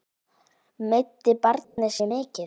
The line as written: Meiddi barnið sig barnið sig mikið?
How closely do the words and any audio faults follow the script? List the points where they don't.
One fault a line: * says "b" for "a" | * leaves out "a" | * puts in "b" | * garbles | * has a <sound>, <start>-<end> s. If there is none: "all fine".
* has a dropout, 1.6-1.8 s
* leaves out "barnið sig"